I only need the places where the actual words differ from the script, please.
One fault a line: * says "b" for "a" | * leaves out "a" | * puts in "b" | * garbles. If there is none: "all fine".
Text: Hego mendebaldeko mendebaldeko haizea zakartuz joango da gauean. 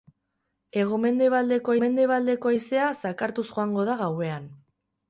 all fine